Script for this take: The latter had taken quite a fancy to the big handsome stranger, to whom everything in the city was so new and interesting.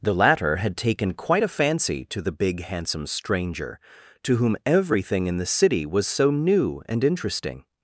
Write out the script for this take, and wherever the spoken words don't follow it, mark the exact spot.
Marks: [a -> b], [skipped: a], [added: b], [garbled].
The latter had taken quite a fancy to the big handsome stranger, to whom everything in the city was so new and interesting.